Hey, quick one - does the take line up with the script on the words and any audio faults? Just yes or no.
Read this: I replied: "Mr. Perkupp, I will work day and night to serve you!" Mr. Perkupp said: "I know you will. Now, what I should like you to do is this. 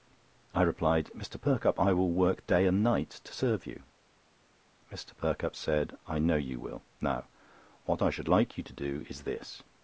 yes